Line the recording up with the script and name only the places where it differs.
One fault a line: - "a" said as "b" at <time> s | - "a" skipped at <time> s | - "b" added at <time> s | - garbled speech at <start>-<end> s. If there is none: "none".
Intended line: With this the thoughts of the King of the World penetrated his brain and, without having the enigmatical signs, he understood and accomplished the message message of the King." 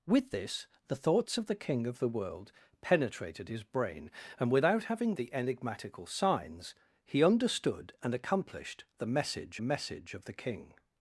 none